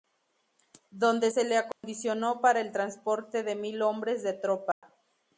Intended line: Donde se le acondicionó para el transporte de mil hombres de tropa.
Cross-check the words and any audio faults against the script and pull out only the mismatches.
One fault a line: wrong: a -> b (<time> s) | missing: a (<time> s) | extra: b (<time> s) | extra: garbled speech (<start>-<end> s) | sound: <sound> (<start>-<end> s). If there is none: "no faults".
sound: dropout (1.7-1.8 s)
sound: dropout (4.7-4.8 s)